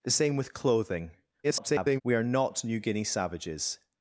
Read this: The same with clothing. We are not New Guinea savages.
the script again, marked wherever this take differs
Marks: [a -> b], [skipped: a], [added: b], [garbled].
The same with clothing. [garbled] We are not New Guinea savages.